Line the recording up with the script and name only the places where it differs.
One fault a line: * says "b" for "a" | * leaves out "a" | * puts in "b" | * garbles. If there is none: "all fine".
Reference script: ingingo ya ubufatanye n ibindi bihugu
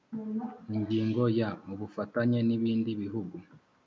all fine